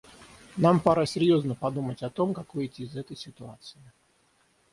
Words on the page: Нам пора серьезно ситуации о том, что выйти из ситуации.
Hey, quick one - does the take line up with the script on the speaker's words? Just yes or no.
no